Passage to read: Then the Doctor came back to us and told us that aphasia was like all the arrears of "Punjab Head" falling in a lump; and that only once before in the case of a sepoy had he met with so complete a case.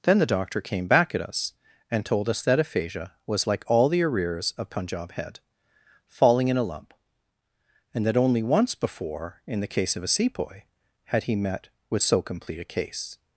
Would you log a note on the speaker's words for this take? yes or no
yes